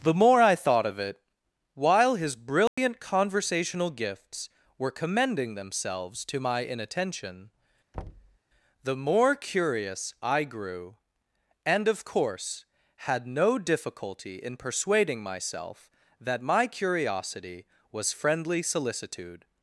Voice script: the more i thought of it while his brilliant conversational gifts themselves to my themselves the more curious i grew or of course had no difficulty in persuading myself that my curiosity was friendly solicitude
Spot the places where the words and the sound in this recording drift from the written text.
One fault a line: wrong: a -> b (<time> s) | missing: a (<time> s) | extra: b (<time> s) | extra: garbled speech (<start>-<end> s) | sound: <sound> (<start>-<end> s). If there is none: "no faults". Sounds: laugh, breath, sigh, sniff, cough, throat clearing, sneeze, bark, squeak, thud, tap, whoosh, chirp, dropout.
sound: dropout (2.7-2.8 s)
extra: were commending (4.8 s)
wrong: themselves -> inattention (6.6 s)
sound: thud (7.9-8.4 s)
wrong: or -> and (11.6 s)